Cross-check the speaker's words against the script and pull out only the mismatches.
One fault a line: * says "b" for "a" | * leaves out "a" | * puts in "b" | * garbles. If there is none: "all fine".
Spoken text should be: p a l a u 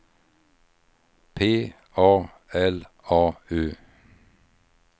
all fine